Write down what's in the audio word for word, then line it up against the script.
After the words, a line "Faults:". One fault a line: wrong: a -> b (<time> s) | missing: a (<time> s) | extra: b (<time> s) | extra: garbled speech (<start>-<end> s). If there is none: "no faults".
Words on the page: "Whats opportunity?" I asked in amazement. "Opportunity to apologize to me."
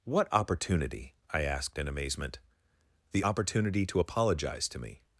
"What opportunity?" I asked in amazement. "The opportunity to apologize to me."
Faults:
wrong: Whats -> What (0.0 s)
extra: The (3.1 s)